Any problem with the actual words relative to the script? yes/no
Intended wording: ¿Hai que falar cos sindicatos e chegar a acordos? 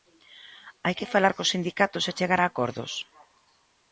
no